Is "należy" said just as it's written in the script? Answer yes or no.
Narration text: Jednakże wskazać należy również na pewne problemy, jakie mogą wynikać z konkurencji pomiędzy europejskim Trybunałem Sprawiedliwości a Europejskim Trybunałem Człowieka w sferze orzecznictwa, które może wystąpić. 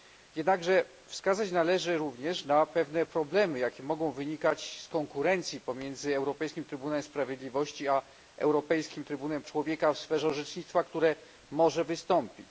yes